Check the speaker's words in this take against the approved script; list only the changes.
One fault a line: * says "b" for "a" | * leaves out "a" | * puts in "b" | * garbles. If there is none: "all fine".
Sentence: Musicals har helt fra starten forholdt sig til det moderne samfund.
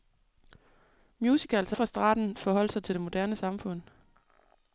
* leaves out "helt"